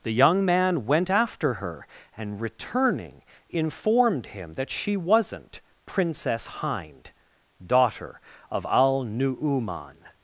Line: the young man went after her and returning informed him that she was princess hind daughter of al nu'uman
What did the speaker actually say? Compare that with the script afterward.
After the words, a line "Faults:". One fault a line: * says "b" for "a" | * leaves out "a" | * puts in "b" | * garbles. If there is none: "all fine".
the young man went after her and returning informed him that she wasn't princess hind daughter of al nu'uman
Faults:
* says "wasn't" for "was"